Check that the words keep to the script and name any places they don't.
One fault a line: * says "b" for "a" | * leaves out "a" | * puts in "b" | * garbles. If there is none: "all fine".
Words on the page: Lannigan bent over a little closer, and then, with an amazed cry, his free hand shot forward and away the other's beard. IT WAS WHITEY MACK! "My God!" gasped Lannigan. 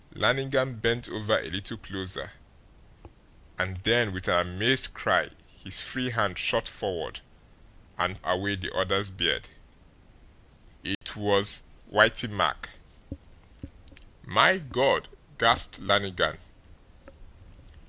all fine